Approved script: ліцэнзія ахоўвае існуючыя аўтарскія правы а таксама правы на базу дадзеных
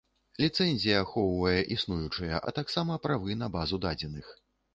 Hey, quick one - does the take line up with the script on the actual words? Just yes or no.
no